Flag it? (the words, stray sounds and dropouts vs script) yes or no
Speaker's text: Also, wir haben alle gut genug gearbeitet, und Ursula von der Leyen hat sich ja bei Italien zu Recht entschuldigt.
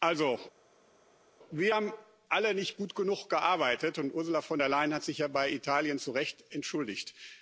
yes